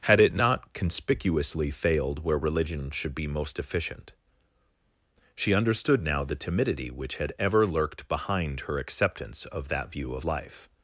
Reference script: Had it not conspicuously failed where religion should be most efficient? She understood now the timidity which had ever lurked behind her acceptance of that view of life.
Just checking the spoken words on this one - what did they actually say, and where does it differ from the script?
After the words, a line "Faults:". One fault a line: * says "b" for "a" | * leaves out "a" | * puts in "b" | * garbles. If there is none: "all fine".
Had it not conspicuously failed where religion should be most efficient? She understood now the timidity which had ever lurked behind her acceptance of that view of life.
Faults:
all fine